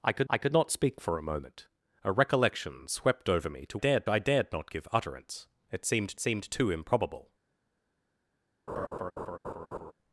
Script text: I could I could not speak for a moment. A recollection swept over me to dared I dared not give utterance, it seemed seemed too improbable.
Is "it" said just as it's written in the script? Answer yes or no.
yes